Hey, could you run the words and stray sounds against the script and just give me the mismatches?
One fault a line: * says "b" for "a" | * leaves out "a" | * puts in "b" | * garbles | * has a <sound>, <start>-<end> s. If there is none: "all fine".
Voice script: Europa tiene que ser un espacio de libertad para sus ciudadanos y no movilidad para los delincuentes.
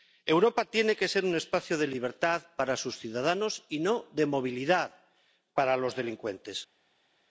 * puts in "de"